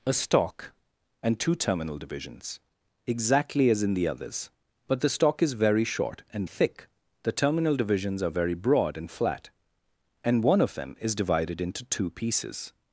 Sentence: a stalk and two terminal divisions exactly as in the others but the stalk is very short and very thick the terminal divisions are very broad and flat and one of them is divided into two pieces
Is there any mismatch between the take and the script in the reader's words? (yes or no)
yes